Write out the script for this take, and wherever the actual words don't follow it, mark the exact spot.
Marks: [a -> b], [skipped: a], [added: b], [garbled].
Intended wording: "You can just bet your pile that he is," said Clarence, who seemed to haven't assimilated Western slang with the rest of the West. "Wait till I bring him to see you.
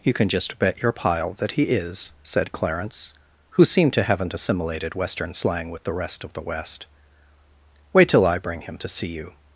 "You can just bet your pile that he is," said Clarence, who seemed to haven't assimilated Western slang with the rest of the West. "Wait till I bring him to see you.